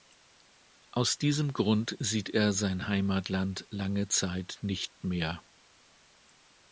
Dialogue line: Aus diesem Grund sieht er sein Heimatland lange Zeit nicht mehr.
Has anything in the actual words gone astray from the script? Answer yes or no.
no